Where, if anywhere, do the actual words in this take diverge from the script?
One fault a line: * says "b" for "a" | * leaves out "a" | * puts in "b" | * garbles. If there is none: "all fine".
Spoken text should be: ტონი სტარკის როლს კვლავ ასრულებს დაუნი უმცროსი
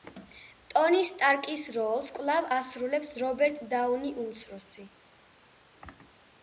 * puts in "რობერტ"